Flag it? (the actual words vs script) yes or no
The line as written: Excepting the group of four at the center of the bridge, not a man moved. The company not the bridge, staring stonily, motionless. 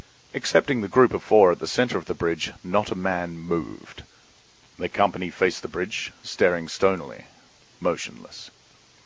yes